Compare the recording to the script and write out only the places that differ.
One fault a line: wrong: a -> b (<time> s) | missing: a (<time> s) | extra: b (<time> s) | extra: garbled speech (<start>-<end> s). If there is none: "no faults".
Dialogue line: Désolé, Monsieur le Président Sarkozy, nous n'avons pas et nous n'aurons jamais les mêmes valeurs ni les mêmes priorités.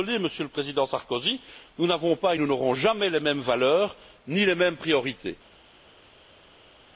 no faults